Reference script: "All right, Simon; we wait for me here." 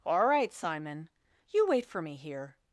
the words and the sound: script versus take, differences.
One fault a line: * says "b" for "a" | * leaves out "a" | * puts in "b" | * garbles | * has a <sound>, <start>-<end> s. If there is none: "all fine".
* says "you" for "we"